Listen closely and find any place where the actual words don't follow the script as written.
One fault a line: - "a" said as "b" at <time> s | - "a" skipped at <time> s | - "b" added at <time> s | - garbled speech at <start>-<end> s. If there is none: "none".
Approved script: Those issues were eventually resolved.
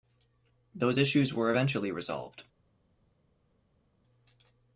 none